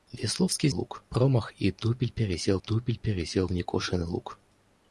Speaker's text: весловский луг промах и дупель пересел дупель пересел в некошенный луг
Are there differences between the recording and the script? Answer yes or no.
no